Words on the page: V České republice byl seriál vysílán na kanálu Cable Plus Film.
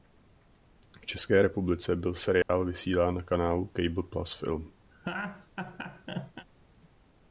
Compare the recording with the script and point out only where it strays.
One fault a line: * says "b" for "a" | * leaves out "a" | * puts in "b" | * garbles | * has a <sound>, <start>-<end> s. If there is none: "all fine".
* has a dropout, 2.4-2.5 s
* has a laugh, 4.9-6.5 s